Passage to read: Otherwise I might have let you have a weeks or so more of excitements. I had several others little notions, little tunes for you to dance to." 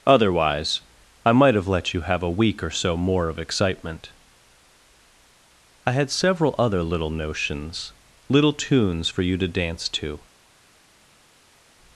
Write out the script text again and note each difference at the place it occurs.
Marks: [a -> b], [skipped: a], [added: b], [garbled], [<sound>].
Otherwise I might have let you have a [weeks -> week] or so more of [excitements. -> excitement] I had several [others -> other] little notions, little tunes for you to dance to."